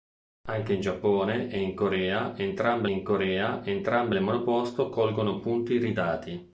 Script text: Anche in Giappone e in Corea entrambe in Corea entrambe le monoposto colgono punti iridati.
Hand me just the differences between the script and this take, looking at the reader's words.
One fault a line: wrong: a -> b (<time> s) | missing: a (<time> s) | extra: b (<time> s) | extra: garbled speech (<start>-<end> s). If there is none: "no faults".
no faults